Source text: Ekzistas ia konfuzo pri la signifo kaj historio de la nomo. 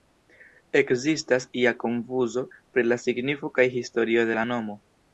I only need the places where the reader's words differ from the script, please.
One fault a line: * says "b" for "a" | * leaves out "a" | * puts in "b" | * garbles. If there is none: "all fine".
all fine